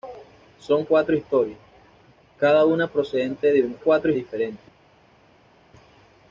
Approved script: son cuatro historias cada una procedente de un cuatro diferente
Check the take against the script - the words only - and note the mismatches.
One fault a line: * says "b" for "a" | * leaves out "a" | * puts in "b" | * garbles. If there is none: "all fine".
all fine